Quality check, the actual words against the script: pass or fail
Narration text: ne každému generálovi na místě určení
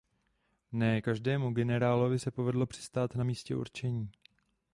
fail